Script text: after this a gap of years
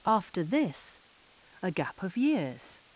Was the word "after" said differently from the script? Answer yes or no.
no